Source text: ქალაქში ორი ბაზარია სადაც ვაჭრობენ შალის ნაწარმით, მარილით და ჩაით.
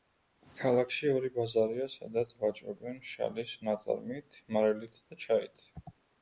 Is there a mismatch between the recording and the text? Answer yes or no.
no